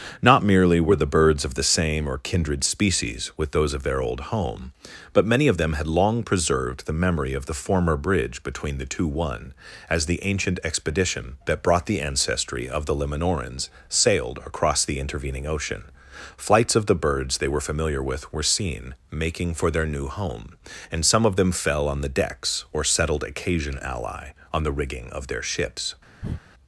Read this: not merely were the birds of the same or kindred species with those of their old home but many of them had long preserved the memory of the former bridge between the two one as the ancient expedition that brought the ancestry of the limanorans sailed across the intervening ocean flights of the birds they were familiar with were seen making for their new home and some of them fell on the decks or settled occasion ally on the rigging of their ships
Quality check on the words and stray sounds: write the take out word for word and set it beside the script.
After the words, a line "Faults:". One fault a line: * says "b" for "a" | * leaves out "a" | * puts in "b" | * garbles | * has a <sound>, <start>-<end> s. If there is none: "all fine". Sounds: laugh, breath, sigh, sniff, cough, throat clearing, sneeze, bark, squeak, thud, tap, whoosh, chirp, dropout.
not merely were the birds of the same or kindred species with those of their old home but many of them had long preserved the memory of the former bridge between the two one as the ancient expedition that brought the ancestry of the limanorans sailed across the intervening ocean flights of the birds they were familiar with were seen making for their new home and some of them fell on the decks or settled occasion ally on the rigging of their ships
Faults:
* has a breath, 26.2-26.4 s